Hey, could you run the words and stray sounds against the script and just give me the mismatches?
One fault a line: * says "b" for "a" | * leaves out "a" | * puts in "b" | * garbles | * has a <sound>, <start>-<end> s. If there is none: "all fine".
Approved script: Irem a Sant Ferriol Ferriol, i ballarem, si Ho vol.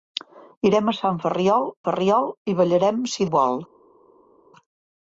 all fine